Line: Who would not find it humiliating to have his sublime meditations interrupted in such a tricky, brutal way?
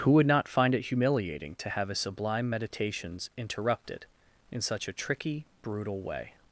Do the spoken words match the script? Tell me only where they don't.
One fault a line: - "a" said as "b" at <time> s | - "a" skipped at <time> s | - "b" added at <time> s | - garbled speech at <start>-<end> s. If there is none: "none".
none